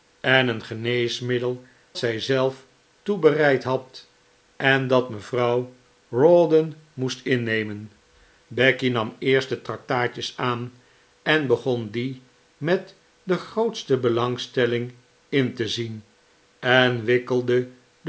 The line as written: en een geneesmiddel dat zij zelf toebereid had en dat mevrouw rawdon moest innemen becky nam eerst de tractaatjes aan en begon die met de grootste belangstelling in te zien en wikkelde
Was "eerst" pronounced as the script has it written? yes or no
yes